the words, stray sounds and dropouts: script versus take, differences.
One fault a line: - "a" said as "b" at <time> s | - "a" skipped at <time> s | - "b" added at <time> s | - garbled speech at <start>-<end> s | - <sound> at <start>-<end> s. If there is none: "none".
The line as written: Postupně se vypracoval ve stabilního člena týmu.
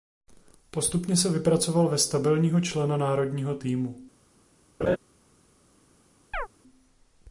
- "národního" added at 3.0 s
- laugh at 4.8-5.0 s
- chirp at 6.3-6.5 s